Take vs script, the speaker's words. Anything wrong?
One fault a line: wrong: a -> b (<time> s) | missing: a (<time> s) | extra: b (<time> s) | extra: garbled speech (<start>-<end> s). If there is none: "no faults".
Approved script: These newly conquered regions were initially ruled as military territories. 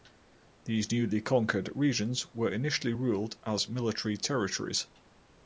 no faults